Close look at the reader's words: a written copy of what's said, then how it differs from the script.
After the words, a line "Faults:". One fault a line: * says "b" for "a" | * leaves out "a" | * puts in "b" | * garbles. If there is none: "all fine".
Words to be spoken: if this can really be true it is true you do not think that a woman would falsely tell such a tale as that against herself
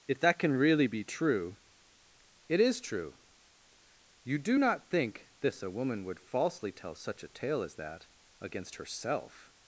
if that can really be true it is true you do not think this a woman would falsely tell such a tale as that against herself
Faults:
* says "that" for "this"
* says "this" for "that"